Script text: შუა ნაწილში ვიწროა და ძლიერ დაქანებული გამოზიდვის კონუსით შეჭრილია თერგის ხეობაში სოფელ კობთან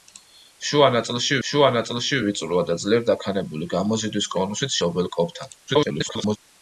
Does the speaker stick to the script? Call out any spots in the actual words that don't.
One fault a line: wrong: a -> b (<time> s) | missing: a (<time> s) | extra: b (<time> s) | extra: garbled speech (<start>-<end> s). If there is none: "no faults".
extra: შუა ნაწილში (1.5 s)
missing: შეჭრილია თერგის ხეობაში (4.8 s)
extra: garbled speech (5.7-6.4 s)